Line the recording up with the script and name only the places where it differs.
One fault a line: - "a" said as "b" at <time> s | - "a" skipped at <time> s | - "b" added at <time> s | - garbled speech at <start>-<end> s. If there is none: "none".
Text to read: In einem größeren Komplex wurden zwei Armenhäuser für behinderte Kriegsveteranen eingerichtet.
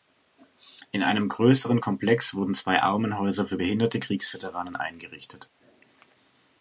none